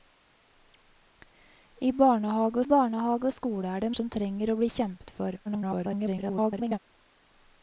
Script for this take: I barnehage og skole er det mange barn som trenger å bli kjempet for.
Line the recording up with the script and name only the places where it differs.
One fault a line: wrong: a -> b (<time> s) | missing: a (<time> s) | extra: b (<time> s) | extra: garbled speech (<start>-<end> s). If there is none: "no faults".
extra: barnehage (2.7 s)
missing: mange barn (3.9 s)
extra: garbled speech (5.4-6.8 s)